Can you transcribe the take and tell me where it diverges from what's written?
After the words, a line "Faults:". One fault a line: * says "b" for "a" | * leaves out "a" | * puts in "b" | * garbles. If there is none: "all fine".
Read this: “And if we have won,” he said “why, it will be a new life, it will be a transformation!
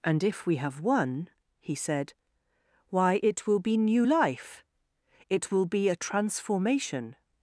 “And if we have won,” he said “why, it will be new life, it will be a transformation!
Faults:
* leaves out "a"